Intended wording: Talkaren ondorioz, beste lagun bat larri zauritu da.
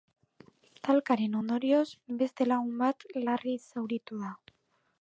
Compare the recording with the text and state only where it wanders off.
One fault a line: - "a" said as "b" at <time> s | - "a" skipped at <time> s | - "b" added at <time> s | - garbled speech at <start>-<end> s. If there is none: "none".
none